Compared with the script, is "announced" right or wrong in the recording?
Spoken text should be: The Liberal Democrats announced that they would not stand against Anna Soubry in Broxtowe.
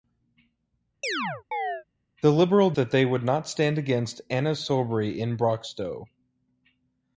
wrong